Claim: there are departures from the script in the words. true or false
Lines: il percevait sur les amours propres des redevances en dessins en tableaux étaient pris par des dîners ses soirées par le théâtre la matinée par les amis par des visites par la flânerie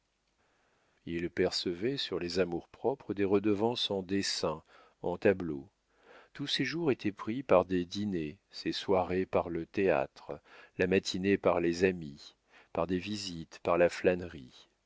true